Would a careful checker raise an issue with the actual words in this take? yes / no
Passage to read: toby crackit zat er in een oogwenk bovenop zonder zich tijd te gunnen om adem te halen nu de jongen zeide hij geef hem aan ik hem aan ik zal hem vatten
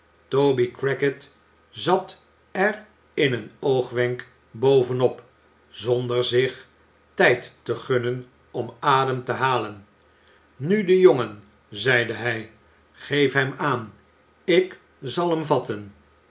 yes